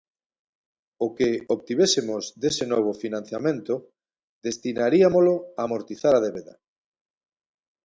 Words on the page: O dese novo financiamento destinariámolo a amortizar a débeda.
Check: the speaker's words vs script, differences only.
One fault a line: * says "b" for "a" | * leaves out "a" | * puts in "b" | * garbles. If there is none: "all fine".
* puts in "que obtivésemos"